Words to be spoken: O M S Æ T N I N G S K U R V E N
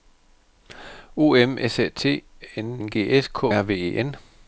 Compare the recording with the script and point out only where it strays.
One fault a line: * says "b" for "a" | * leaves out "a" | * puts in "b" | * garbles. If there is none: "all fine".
* leaves out "I"
* leaves out "U"